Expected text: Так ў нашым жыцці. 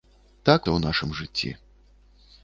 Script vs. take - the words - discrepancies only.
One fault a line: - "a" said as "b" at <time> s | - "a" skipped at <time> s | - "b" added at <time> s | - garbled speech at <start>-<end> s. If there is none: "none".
none